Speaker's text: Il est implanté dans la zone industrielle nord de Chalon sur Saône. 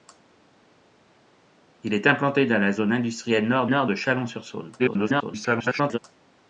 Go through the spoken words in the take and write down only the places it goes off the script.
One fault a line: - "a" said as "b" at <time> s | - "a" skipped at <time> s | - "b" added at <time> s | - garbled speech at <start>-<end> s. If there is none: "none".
- "nord" added at 3.7 s
- garbled speech at 4.8-6.0 s